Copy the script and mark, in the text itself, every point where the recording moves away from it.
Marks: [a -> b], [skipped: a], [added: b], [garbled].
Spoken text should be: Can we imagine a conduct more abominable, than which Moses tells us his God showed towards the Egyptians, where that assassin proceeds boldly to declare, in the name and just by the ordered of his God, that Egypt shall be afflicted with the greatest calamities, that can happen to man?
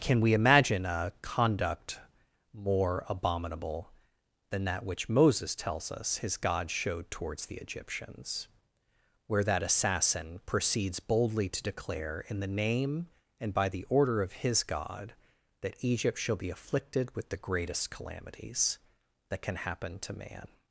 Can we imagine a conduct more abominable, than [added: that] which Moses tells us his God showed towards the Egyptians, where that assassin proceeds boldly to declare, in the name and [skipped: just] by the [ordered -> order] of his God, that Egypt shall be afflicted with the greatest calamities, that can happen to man?